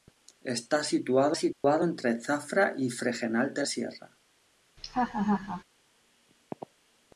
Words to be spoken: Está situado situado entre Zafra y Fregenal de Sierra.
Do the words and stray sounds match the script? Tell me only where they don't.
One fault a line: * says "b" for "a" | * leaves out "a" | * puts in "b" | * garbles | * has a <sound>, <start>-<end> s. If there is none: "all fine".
* has a dropout, 1.5-1.6 s
* has a laugh, 4.8-5.6 s